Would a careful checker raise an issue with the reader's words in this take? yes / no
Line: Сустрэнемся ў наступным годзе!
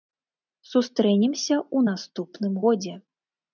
no